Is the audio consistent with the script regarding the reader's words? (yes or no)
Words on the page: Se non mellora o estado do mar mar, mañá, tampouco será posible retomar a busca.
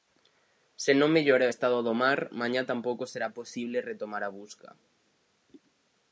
no